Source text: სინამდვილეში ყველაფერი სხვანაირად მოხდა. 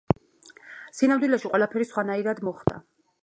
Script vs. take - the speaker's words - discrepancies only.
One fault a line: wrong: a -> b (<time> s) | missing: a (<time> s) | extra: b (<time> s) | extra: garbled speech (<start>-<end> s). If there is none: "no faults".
no faults